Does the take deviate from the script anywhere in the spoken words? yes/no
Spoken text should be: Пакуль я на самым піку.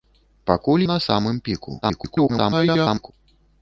yes